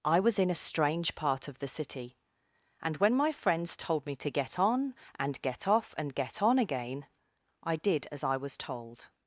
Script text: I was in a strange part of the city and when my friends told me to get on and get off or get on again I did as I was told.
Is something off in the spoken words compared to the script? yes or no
yes